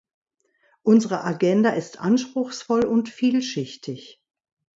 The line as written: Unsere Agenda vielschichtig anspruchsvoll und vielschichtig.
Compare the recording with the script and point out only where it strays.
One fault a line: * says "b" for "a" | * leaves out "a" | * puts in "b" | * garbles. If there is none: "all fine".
* says "ist" for "vielschichtig"